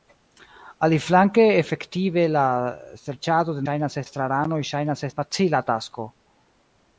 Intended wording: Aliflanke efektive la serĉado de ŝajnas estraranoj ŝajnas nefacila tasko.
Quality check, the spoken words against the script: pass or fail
pass